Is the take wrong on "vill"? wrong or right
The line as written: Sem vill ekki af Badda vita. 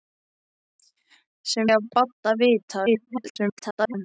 wrong